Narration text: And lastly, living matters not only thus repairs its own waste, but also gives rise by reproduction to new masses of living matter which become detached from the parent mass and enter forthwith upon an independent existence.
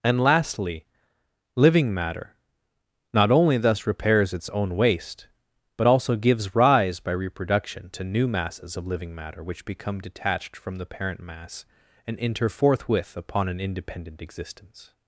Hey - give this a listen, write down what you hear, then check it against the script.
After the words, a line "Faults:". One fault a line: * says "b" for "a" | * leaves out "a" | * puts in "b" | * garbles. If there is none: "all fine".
And lastly, living matter not only thus repairs its own waste, but also gives rise by reproduction to new masses of living matter which become detached from the parent mass and enter forthwith upon an independent existence.
Faults:
* says "matter" for "matters"